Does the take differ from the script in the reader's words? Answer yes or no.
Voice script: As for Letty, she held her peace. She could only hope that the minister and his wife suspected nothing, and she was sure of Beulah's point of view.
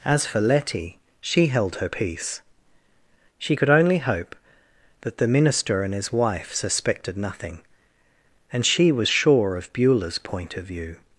no